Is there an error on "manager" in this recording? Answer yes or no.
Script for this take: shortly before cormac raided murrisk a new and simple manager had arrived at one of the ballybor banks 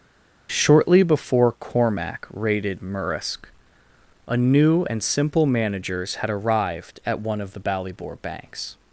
yes